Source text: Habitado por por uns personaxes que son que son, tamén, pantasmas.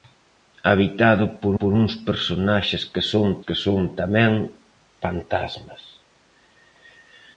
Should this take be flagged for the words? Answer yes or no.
no